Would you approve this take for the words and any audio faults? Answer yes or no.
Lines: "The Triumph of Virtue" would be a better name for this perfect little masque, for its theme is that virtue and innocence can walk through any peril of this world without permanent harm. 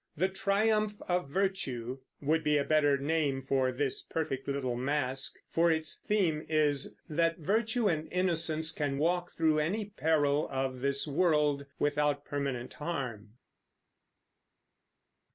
yes